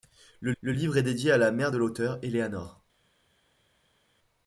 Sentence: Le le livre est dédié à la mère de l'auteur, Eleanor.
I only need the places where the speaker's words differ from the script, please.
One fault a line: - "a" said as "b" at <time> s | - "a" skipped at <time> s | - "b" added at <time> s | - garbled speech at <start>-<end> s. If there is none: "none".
none